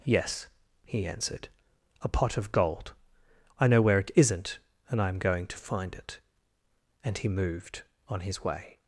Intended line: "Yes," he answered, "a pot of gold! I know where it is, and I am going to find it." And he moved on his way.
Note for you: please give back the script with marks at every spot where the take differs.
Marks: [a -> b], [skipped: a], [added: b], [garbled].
"Yes," he answered, "a pot of gold! I know where it [is, -> isn't] and I am going to find it." And he moved on his way.